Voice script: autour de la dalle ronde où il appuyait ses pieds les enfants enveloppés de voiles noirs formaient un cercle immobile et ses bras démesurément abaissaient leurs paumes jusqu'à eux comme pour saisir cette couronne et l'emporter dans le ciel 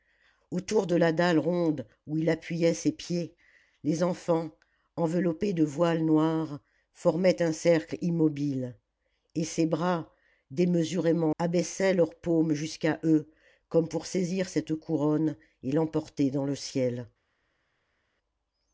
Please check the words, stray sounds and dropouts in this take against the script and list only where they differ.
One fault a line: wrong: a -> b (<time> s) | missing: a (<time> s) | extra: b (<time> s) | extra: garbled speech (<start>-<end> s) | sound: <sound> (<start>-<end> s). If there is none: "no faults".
no faults